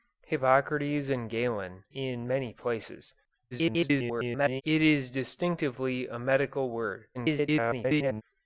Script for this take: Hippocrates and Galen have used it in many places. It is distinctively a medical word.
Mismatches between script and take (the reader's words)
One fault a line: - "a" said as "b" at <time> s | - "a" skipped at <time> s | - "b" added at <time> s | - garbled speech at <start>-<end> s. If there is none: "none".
- "have used it" skipped at 1.8 s
- garbled speech at 3.5-4.6 s
- garbled speech at 7.1-8.2 s